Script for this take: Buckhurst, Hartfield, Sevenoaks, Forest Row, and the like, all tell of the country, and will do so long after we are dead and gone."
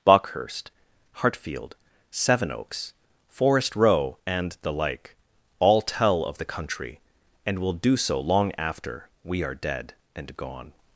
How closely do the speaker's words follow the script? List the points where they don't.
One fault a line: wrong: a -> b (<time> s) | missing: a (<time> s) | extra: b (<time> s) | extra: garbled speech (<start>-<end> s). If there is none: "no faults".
no faults